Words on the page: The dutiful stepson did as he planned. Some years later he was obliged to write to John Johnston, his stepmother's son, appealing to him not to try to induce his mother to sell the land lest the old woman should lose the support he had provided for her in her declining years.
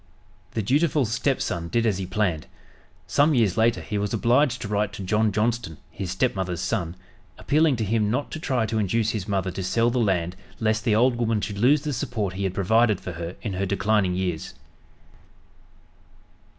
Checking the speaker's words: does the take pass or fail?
pass